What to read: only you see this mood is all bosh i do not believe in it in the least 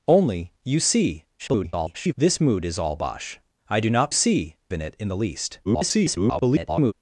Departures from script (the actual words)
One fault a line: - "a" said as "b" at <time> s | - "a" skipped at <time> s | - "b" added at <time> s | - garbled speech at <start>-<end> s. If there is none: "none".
- garbled speech at 1.4-2.1 s
- "believe" said as "see" at 4.1 s
- garbled speech at 5.6-6.9 s